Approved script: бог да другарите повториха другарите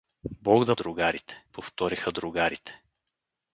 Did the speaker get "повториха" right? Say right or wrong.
right